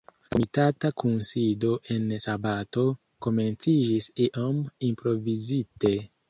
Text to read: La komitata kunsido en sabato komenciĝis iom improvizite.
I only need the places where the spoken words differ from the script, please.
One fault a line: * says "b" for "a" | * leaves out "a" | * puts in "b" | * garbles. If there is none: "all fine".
all fine